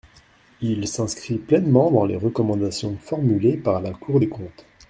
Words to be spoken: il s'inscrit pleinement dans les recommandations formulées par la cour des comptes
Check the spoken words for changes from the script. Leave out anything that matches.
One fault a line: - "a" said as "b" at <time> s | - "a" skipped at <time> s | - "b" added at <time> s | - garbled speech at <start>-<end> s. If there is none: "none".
none